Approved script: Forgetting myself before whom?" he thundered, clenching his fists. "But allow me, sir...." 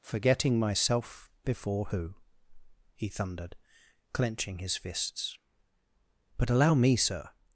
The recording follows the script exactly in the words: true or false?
false